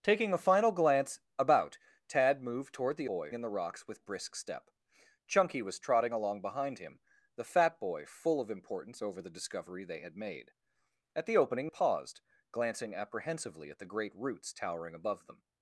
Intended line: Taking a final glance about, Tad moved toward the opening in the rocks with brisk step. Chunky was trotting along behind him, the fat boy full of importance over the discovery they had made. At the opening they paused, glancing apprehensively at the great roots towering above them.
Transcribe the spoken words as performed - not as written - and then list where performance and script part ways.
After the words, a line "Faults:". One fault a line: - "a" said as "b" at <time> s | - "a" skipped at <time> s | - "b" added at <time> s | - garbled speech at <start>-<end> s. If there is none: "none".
Taking a final glance about, Tad moved toward the boy in the rocks with brisk step. Chunky was trotting along behind him, the fat boy full of importance over the discovery they had made. At the opening paused, glancing apprehensively at the great roots towering above them.
Faults:
- "opening" said as "boy" at 3.1 s
- "they" skipped at 11.7 s